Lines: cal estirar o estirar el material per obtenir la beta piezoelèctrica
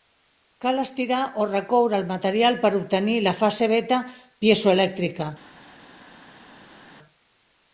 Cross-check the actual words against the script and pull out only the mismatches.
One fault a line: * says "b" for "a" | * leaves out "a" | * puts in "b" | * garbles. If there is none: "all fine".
* says "recoure" for "estirar"
* puts in "fase"